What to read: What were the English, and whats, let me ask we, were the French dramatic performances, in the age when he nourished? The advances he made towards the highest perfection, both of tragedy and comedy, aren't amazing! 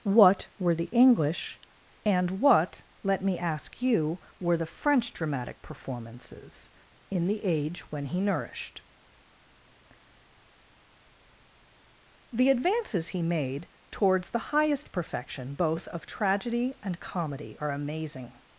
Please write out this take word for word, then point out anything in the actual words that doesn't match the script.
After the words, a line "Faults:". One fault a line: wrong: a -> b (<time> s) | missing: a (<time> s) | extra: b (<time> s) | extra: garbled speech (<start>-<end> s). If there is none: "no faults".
What were the English, and what, let me ask you, were the French dramatic performances, in the age when he nourished? The advances he made towards the highest perfection, both of tragedy and comedy, are amazing!
Faults:
wrong: whats -> what (2.3 s)
wrong: we -> you (3.8 s)
wrong: aren't -> are (17.6 s)